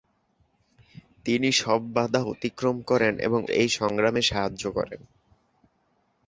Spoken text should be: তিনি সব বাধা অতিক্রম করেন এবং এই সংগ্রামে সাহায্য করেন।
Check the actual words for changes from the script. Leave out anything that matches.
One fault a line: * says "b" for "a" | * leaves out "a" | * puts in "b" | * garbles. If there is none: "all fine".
all fine